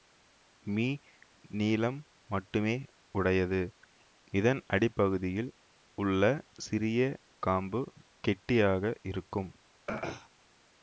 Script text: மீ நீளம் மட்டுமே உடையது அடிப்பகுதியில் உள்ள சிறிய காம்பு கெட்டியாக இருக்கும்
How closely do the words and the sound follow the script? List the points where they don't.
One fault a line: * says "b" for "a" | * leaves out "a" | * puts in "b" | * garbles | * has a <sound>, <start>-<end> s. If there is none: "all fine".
* puts in "இதன்"
* has a throat clearing, 9.9-10.3 s